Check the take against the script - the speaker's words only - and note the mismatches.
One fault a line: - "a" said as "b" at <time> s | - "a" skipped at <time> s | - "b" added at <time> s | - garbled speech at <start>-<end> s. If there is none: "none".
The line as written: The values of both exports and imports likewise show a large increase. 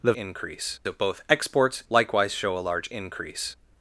- "values" said as "increase" at 0.1 s
- "and imports" skipped at 1.8 s